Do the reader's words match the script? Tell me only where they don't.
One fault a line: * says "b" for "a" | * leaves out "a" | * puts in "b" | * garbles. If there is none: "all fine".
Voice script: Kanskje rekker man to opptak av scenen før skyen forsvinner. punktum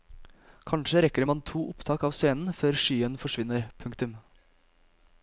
all fine